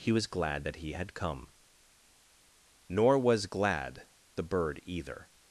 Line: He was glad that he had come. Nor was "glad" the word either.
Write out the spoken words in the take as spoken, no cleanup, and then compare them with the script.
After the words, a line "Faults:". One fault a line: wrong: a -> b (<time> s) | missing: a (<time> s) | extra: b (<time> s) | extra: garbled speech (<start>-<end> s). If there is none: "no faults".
He was glad that he had come. Nor was "glad" the bird either.
Faults:
wrong: word -> bird (4.4 s)